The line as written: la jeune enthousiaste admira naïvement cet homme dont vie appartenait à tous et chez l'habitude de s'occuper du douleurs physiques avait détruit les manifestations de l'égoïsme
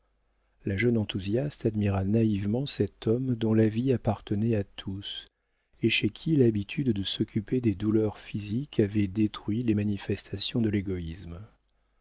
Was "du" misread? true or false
true